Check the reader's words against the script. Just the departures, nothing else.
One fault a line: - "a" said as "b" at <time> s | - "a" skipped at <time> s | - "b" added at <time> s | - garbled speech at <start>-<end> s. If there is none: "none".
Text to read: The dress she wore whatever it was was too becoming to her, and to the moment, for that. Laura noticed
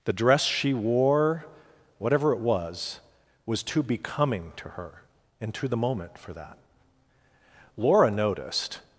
none